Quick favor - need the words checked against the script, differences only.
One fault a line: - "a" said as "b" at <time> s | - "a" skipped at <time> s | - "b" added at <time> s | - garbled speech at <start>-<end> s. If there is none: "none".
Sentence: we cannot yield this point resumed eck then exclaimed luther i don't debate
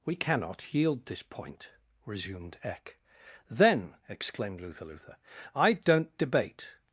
- "luther" added at 4.8 s